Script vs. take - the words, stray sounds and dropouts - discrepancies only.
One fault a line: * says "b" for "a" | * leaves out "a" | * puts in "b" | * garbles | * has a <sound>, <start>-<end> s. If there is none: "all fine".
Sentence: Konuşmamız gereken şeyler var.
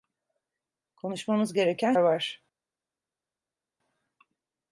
* leaves out "şeyler"